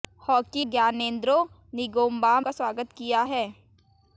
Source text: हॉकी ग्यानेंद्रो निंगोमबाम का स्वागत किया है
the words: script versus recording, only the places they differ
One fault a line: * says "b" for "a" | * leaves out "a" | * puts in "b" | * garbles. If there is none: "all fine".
all fine